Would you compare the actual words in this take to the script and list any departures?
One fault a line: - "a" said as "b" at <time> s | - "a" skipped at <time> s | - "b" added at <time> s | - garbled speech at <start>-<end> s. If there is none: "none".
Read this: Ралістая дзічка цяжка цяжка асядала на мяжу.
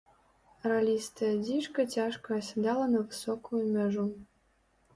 - "цяжка" skipped at 2.3 s
- "высокую" added at 3.1 s